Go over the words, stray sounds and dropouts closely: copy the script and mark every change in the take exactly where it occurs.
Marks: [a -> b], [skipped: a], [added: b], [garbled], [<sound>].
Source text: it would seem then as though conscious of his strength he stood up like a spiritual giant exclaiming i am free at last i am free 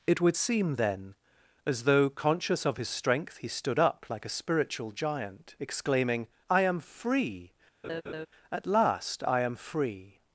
it would seem then as though conscious of his strength he stood up like a spiritual giant exclaiming i am free [laugh] at last i am free